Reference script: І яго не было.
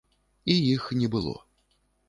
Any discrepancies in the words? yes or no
yes